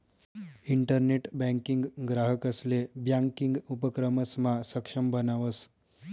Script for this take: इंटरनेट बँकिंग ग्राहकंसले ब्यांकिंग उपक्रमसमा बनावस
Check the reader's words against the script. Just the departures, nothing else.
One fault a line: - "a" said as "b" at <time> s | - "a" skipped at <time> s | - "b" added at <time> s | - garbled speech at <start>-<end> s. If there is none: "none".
- "सक्षम" added at 4.7 s